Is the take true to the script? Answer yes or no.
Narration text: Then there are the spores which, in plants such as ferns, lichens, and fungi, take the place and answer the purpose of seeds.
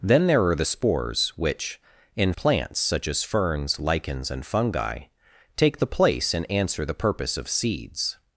yes